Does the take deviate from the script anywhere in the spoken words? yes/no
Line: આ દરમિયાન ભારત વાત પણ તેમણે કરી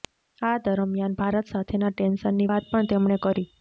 yes